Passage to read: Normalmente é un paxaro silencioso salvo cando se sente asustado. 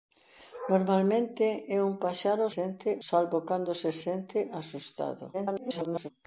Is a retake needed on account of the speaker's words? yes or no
yes